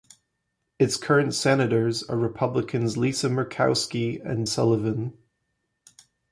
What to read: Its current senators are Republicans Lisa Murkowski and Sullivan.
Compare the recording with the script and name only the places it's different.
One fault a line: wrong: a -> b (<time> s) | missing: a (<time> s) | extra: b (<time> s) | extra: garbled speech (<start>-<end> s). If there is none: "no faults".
no faults